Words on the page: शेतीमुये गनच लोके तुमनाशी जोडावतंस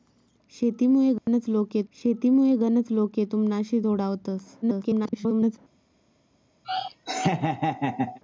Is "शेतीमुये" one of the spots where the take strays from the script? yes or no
no